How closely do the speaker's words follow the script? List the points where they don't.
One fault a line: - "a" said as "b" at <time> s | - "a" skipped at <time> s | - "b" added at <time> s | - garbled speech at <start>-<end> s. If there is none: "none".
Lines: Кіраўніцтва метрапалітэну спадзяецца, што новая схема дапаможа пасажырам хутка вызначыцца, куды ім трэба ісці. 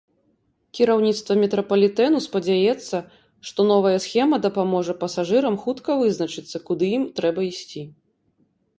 none